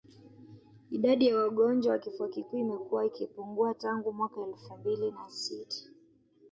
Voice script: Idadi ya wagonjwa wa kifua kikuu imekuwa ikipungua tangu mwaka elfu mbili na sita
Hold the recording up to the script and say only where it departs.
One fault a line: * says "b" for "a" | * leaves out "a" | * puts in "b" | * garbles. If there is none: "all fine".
all fine